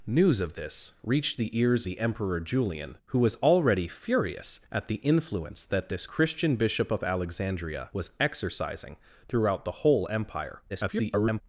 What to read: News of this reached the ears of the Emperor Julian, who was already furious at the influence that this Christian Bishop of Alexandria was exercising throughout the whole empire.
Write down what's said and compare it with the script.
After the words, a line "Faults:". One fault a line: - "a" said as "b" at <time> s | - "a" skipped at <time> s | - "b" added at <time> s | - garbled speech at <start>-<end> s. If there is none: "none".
News of this reached the ears the Emperor Julian, who was already furious at the influence that this Christian Bishop of Alexandria was exercising throughout the whole empire. [garbled]
Faults:
- "of" skipped at 1.9 s
- garbled speech at 10.7-11.4 s